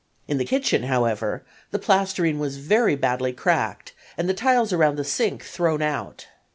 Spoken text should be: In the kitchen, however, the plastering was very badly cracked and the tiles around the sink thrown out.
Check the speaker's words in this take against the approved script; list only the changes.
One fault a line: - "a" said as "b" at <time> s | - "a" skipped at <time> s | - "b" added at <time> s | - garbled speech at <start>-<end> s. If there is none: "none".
none